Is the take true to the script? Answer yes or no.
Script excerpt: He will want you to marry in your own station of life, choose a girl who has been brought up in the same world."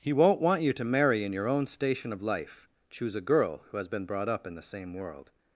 no